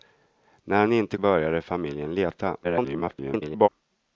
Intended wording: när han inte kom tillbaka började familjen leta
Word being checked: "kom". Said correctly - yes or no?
no